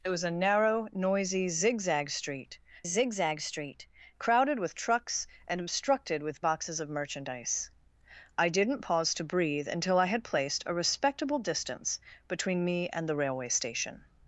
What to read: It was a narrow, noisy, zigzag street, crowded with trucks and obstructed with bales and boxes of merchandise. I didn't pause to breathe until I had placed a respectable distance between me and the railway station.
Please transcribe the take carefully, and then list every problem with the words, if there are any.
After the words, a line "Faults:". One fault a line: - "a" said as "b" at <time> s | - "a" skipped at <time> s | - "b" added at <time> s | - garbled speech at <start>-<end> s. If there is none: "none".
It was a narrow, noisy, zigzag street zigzag street, crowded with trucks and obstructed with boxes of merchandise. I didn't pause to breathe until I had placed a respectable distance between me and the railway station.
Faults:
- "zigzag street" added at 2.8 s
- "bales and" skipped at 6.4 s